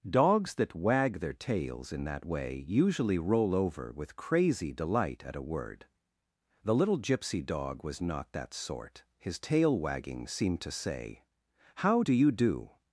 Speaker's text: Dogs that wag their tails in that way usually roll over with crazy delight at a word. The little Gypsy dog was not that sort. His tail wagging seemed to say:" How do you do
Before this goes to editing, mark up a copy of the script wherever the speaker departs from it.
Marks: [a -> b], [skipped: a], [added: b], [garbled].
Dogs that wag their tails in that way usually roll over with crazy delight at a word. The little Gypsy dog was not that sort. His tail wagging seemed to say:" How do you do